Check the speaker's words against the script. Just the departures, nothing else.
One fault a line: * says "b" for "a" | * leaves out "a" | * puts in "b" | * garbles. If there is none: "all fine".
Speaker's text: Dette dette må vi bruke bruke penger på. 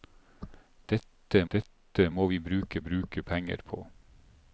all fine